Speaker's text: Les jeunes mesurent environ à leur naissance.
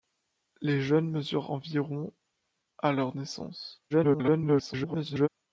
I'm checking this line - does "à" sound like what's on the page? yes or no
yes